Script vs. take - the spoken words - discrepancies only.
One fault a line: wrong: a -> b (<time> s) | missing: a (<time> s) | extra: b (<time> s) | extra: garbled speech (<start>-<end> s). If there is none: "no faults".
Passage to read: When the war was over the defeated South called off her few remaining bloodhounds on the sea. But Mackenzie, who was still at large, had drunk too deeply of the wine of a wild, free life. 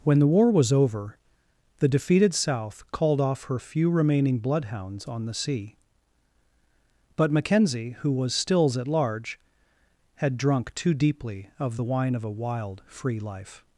wrong: still -> stills (8.3 s)